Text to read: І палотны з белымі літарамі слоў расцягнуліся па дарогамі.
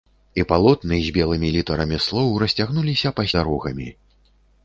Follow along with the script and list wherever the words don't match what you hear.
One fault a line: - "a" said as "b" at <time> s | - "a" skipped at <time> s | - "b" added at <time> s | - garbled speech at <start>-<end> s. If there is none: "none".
none